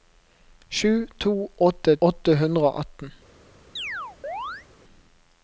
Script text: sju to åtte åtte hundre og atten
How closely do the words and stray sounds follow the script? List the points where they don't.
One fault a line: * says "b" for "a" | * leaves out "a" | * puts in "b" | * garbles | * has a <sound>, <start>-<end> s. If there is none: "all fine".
* has a chirp, 3.8-4.7 s